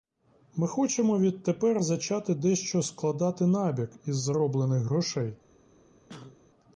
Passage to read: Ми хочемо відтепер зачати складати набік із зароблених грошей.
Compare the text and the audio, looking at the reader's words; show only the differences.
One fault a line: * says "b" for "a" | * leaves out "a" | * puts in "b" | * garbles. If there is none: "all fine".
* puts in "дещо"